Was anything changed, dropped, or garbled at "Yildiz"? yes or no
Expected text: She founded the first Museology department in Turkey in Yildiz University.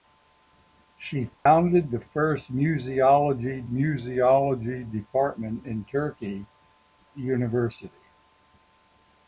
yes